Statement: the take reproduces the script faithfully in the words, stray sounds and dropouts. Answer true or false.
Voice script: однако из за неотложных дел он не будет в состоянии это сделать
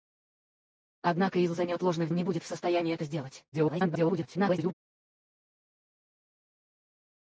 false